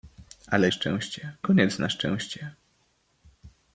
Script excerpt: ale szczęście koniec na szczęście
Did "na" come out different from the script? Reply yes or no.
no